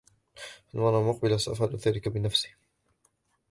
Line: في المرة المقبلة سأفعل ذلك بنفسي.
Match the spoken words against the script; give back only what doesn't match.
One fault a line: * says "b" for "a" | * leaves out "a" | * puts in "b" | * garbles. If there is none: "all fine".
all fine